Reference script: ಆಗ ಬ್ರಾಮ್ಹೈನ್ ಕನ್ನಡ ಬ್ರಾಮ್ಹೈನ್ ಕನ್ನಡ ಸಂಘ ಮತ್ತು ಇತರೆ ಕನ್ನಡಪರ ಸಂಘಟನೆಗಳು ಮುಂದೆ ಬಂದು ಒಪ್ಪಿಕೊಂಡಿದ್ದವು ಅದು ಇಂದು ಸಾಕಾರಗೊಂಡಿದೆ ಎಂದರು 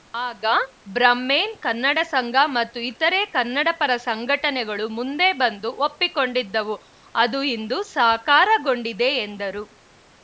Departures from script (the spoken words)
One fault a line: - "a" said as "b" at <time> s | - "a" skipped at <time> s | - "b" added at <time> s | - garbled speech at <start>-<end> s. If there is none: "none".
- "ಬ್ರಾಮ್ಹೈನ್ ಕನ್ನಡ" skipped at 2.0 s